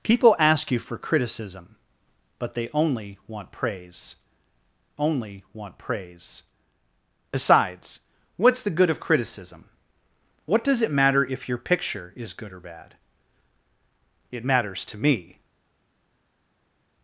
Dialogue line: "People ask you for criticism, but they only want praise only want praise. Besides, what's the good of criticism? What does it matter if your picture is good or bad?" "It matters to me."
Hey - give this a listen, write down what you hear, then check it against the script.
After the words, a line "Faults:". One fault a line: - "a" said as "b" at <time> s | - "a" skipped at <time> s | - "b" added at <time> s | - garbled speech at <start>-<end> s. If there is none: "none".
"People ask you for criticism, but they only want praise only want praise. Besides, what's the good of criticism? What does it matter if your picture is good or bad?" "It matters to me."
Faults:
none